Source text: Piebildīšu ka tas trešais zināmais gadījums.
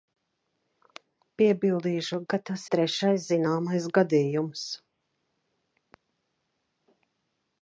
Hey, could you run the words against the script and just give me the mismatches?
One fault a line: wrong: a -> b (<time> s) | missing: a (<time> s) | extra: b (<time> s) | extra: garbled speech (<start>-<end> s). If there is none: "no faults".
no faults